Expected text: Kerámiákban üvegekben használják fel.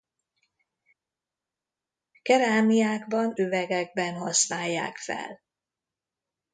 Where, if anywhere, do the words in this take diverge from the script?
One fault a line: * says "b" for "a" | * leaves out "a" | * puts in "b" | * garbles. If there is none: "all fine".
all fine